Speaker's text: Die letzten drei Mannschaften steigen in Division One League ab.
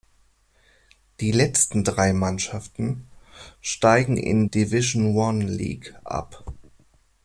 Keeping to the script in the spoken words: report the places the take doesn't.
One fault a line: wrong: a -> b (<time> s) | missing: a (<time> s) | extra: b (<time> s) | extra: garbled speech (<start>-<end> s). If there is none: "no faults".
no faults